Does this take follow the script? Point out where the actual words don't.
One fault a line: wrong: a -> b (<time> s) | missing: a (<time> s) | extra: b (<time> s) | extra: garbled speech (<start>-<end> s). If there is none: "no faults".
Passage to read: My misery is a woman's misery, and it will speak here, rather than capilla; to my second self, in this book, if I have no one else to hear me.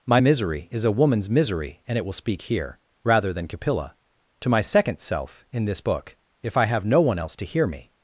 no faults